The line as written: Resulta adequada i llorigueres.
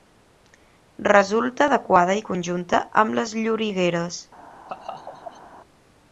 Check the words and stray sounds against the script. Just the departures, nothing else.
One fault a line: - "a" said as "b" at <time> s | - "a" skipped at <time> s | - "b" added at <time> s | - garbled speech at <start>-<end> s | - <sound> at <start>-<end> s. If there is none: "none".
- "conjunta amb les" added at 2.3 s
- laugh at 4.7-5.4 s